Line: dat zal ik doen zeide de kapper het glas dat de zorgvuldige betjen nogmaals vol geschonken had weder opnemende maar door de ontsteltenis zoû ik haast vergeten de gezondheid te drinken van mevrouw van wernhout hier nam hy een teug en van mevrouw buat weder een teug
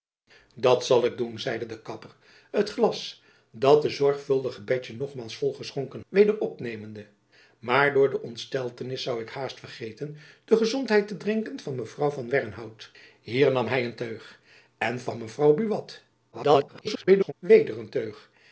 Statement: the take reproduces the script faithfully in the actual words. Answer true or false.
false